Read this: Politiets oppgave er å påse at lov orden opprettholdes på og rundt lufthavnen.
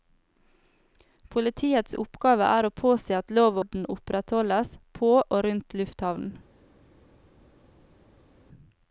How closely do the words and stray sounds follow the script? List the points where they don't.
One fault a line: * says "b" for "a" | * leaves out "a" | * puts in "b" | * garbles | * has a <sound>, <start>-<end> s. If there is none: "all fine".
all fine